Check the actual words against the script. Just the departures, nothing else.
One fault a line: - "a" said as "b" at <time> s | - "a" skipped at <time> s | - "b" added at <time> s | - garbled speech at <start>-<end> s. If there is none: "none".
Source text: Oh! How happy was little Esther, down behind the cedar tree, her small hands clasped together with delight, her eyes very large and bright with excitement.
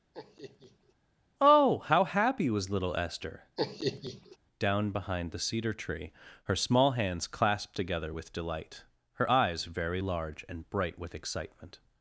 none